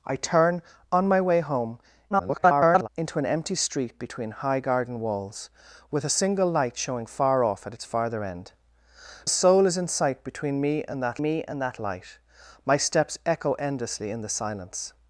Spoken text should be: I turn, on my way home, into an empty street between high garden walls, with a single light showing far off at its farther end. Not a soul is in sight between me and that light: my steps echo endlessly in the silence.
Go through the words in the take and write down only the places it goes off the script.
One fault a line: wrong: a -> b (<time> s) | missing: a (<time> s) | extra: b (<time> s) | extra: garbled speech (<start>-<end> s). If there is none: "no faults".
extra: garbled speech (2.1-2.9 s)
missing: Not (8.5 s)
extra: me and that (11.2 s)